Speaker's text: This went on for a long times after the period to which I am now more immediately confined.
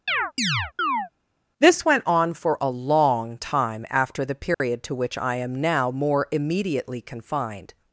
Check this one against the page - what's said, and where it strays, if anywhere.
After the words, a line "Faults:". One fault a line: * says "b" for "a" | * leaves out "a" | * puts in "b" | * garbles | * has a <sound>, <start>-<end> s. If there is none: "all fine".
This went on for a long time after the period to which I am now more immediately confined.
Faults:
* has a chirp, 0.1-1.1 s
* says "time" for "times"
* has a dropout, 4.5-4.6 s